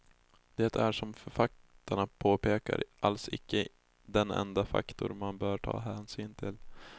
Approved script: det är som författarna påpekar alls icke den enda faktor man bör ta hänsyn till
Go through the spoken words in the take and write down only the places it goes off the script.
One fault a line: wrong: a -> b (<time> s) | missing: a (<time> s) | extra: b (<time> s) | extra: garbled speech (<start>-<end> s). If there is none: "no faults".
no faults